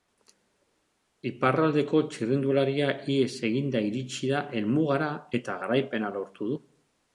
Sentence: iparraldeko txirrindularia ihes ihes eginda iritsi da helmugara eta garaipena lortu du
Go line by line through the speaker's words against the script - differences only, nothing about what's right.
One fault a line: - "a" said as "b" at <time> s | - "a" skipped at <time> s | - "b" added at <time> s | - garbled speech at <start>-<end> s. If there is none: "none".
- "ihes" skipped at 3.3 s